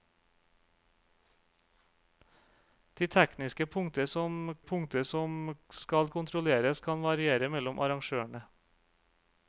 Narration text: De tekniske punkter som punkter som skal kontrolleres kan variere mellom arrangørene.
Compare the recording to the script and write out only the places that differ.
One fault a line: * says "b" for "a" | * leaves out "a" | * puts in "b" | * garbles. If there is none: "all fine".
all fine